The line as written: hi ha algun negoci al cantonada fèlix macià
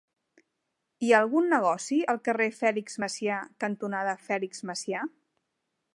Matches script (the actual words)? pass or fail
fail